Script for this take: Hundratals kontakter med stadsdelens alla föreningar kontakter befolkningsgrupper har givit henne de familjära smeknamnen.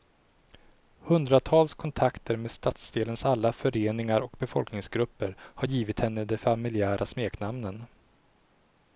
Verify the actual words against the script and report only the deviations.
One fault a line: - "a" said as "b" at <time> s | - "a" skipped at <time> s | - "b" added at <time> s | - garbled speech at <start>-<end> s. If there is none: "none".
- "kontakter" said as "och" at 4.2 s